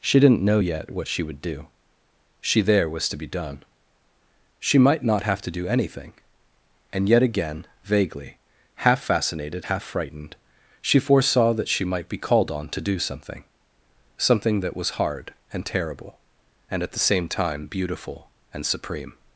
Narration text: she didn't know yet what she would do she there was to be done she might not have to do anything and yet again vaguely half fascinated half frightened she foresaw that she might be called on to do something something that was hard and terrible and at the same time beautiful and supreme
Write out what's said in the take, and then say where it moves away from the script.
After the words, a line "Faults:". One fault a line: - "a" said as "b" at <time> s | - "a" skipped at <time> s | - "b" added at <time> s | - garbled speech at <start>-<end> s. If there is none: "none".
she didn't know yet what she would do she there was to be done she might not have to do anything and yet again vaguely half fascinated half frightened she foresaw that she might be called on to do something something that was hard and terrible and at the same time beautiful and supreme
Faults:
none